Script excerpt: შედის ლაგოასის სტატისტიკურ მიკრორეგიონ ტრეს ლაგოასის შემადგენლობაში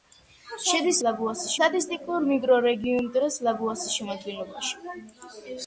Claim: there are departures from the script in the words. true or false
false